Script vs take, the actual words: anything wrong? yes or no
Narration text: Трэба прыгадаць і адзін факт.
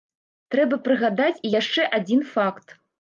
yes